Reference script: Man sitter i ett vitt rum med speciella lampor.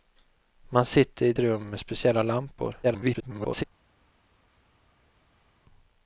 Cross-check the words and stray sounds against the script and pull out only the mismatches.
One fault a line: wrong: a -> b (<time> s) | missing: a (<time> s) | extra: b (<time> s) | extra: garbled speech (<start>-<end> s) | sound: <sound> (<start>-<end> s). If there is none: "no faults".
missing: vitt (1.4 s)
extra: garbled speech (2.8-3.6 s)